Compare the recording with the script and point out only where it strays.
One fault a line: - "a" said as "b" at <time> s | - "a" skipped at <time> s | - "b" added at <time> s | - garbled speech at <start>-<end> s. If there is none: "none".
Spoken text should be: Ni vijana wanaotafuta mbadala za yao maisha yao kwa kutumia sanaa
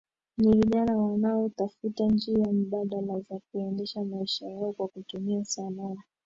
- "njia" added at 2.0 s
- "yao" said as "kuendesha" at 3.5 s